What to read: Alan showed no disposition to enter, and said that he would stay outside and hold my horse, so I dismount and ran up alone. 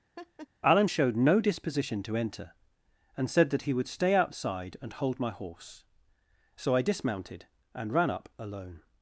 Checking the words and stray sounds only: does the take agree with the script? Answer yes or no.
no